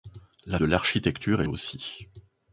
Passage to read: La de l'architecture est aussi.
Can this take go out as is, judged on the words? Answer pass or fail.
pass